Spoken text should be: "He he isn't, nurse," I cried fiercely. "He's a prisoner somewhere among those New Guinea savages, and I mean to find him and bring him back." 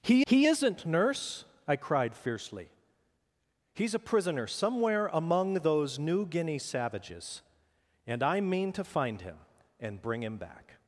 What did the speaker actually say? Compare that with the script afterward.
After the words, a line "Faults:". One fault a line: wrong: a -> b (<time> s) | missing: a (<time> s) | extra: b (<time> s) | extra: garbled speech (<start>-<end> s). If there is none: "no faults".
"He he isn't, nurse," I cried fiercely. "He's a prisoner somewhere among those New Guinea savages, and I mean to find him and bring him back."
Faults:
no faults